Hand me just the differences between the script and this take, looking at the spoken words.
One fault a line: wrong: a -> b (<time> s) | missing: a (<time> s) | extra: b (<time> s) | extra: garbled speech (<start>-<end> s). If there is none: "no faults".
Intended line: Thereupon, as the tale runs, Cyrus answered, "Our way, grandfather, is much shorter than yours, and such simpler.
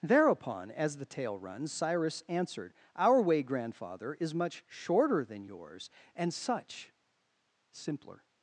no faults